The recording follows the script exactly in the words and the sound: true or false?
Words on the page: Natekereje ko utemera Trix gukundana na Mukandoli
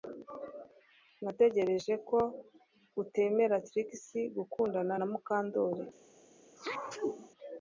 false